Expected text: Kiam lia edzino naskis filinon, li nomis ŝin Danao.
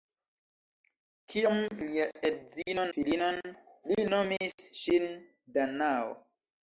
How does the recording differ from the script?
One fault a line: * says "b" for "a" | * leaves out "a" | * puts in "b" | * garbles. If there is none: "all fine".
* leaves out "naskis"